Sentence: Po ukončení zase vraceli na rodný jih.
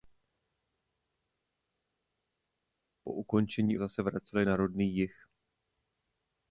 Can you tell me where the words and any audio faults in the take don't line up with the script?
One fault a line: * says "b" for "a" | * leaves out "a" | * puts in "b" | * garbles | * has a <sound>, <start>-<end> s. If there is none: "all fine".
all fine